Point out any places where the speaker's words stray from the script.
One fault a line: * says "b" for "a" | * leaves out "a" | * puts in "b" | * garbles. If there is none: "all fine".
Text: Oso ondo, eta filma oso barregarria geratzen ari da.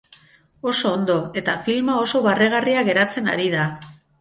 all fine